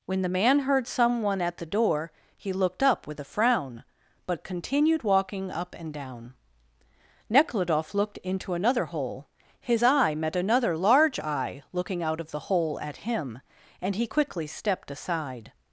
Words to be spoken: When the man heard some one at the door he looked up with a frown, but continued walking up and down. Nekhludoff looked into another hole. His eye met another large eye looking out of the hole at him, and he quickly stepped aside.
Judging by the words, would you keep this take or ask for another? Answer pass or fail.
pass